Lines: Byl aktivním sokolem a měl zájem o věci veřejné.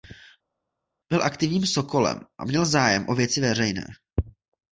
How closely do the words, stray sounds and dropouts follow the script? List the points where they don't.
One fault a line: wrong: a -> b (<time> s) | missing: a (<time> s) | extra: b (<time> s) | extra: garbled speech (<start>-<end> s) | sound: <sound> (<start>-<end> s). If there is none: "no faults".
no faults